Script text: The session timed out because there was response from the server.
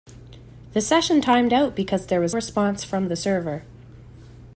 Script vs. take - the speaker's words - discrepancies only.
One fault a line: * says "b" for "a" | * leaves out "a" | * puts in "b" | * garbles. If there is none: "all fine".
all fine